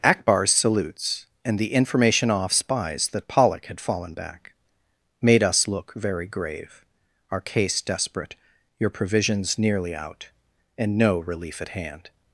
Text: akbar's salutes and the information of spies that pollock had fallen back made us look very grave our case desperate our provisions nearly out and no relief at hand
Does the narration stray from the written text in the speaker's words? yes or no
yes